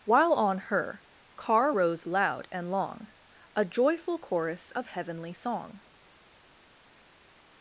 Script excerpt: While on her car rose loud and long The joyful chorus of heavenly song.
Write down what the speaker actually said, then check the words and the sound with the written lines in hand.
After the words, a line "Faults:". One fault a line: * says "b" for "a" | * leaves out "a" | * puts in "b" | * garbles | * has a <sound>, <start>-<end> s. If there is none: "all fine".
While on her car rose loud and long A joyful chorus of heavenly song.
Faults:
* says "A" for "The"